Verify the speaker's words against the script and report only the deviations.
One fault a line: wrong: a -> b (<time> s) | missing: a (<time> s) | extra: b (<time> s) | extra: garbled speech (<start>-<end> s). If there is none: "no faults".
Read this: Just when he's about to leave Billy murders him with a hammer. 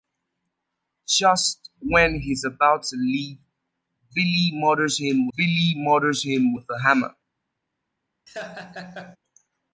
extra: Billy murders him (5.4 s)